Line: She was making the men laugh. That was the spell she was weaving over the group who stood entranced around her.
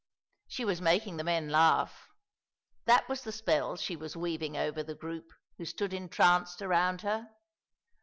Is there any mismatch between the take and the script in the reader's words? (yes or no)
no